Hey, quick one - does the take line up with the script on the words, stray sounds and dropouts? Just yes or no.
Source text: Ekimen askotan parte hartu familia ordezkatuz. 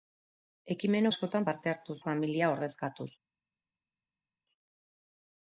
yes